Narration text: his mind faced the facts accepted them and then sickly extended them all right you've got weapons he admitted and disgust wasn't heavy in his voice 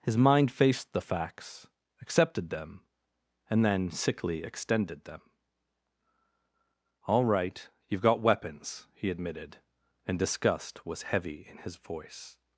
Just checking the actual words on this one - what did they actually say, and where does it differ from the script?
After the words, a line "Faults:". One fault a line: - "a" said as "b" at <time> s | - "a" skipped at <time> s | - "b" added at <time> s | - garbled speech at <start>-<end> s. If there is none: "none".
his mind faced the facts accepted them and then sickly extended them all right you've got weapons he admitted and disgust was heavy in his voice
Faults:
- "wasn't" said as "was" at 10.8 s